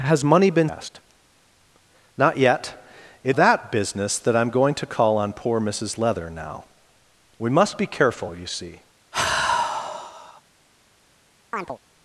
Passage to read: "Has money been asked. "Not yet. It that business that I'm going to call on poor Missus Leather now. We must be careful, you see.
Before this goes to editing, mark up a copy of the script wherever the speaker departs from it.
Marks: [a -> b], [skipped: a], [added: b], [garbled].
"Has money been asked. "Not yet. It that business that I'm going to call on poor Missus Leather now. We must be careful, you see.